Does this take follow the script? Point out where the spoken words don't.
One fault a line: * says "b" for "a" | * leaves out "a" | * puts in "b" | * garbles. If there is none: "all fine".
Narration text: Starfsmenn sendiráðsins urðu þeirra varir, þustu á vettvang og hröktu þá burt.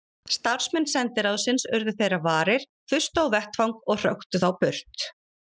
all fine